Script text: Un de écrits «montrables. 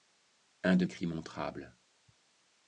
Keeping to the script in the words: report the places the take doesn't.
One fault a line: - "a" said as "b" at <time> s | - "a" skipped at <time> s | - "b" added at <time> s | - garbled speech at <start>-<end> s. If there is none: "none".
none